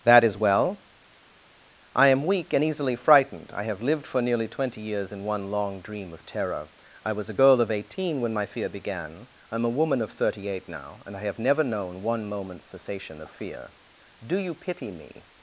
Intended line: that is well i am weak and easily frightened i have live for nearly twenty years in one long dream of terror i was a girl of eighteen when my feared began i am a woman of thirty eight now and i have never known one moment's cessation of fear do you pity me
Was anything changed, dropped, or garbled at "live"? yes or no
yes